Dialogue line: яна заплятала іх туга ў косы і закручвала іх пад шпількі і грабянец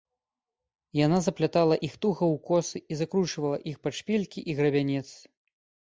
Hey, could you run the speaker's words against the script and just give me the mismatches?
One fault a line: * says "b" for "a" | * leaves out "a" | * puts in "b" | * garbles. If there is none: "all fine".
all fine